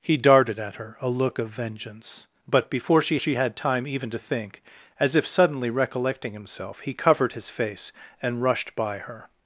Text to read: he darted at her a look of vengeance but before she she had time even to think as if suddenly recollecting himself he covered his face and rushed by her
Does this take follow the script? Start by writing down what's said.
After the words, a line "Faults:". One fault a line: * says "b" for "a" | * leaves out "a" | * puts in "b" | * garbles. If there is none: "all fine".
he darted at her a look of vengeance but before she she had time even to think as if suddenly recollecting himself he covered his face and rushed by her
Faults:
all fine